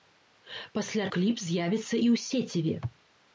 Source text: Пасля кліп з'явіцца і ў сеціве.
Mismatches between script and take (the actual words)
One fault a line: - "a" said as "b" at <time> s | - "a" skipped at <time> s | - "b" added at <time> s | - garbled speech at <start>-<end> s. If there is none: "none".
none